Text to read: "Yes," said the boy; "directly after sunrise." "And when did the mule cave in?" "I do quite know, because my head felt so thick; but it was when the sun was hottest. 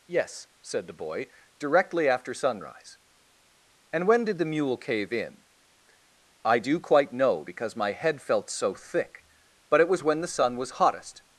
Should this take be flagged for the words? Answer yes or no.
no